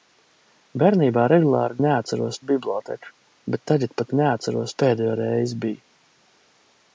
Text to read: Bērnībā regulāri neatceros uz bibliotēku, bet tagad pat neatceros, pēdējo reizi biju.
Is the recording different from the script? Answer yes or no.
no